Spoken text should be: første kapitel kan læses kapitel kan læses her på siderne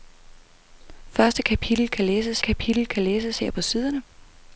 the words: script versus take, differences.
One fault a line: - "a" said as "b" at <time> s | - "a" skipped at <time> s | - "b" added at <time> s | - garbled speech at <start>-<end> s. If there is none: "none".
none